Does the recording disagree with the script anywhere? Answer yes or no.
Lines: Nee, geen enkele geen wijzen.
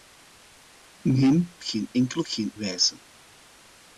no